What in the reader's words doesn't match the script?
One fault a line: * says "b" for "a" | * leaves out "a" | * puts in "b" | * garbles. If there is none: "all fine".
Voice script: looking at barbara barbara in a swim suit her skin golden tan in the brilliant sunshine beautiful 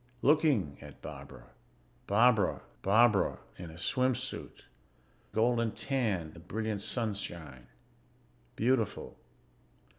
* puts in "barbara"
* leaves out "her skin"
* leaves out "in"